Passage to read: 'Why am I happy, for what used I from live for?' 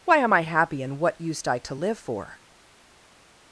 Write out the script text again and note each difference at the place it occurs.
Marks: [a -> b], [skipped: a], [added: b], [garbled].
'Why am I happy, [for -> and] what used I [from -> to] live for?'